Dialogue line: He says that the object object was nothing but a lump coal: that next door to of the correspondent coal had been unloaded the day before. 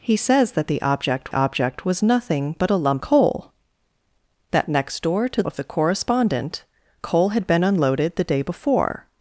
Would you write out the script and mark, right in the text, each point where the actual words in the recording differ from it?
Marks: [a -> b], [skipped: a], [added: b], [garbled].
He says that the object object was nothing but a lump coal: that next door to of the correspondent coal had been unloaded the day before.